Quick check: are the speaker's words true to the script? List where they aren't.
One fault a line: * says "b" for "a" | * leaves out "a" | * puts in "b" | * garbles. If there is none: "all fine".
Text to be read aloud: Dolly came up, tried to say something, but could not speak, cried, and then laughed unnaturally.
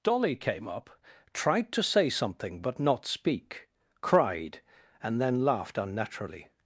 * leaves out "could"